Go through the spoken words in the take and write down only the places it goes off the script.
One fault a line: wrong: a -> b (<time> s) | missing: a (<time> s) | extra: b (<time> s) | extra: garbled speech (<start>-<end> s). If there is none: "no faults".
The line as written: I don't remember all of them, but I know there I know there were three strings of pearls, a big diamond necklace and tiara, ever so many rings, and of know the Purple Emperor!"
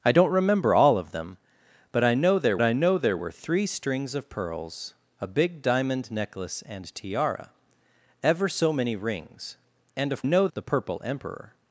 no faults